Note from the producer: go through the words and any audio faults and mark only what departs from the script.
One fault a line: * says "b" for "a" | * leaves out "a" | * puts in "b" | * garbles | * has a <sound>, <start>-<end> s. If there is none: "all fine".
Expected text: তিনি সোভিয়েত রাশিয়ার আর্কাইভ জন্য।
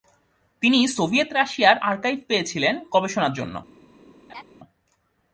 * puts in "পেয়েছিলেন গবেষণার"
* has a laugh, 4.3-4.4 s